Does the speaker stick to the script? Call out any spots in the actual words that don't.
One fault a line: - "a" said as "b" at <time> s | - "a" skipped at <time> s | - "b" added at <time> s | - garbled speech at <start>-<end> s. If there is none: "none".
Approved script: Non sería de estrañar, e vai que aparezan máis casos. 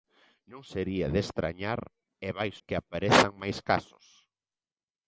none